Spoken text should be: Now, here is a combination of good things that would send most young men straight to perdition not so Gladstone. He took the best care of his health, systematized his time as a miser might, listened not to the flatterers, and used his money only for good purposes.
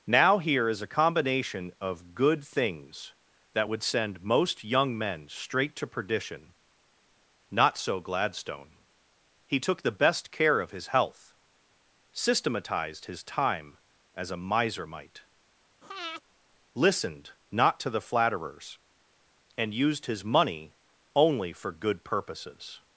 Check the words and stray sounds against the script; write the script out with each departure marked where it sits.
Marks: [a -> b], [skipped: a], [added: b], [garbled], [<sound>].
Now, here is a combination of good things that would send most young men straight to perdition not so Gladstone. He took the best care of his health, systematized his time as a miser might, [breath] listened not to the flatterers, and used his money only for good purposes.